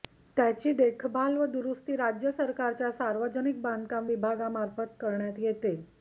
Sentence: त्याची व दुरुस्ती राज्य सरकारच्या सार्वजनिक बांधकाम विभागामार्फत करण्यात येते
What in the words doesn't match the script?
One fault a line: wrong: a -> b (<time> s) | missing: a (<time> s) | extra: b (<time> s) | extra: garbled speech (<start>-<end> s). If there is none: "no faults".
extra: देखभाल (0.7 s)